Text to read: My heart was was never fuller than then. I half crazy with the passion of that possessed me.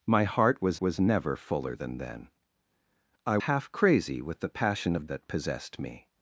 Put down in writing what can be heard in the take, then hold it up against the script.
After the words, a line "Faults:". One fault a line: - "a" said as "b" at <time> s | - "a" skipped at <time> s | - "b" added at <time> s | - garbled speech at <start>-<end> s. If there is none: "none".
My heart was was never fuller than then. I half crazy with the passion of that possessed me.
Faults:
none